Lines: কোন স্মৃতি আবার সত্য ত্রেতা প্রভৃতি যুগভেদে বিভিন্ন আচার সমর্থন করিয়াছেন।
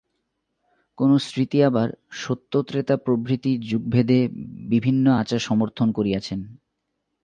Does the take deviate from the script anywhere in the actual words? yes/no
no